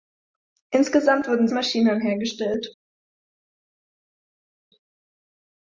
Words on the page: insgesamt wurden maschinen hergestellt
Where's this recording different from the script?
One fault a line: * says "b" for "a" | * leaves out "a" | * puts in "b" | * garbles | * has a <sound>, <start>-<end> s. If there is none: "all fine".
all fine